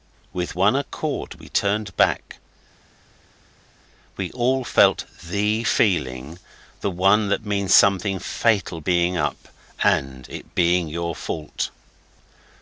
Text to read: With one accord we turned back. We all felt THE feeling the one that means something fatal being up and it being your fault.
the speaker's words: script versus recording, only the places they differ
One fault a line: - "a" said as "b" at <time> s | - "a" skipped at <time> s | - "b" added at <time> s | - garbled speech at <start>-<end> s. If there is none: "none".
none